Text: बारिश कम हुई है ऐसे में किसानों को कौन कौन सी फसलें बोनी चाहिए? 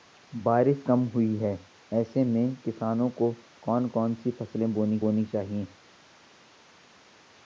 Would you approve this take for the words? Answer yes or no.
no